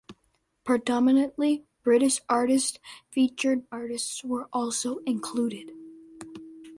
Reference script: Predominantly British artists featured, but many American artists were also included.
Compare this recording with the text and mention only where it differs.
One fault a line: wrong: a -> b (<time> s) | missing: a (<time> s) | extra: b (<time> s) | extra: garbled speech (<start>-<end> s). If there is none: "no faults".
missing: but many American (3.6 s)